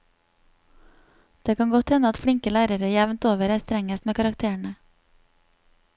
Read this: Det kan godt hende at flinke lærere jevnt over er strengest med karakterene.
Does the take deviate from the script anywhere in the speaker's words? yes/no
no